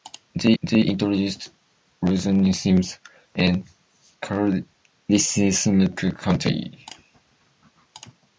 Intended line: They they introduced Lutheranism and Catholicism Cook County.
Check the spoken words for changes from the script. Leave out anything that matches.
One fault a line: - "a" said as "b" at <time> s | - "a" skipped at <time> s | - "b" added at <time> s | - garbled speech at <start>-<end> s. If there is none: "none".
none